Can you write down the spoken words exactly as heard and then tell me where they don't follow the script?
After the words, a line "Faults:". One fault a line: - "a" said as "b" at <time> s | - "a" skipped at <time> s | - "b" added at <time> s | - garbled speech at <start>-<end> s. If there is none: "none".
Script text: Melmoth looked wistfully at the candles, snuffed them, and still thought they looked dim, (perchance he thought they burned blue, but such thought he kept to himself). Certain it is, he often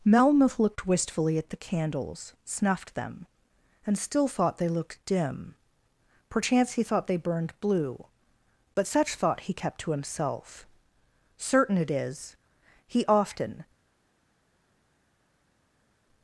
Melmoth looked wistfully at the candles, snuffed them, and still thought they looked dim, (perchance he thought they burned blue, but such thought he kept to himself). Certain it is, he often
Faults:
none